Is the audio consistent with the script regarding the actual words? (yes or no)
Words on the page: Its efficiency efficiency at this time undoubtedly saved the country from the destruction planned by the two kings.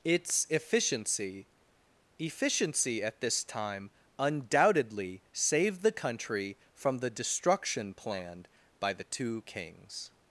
yes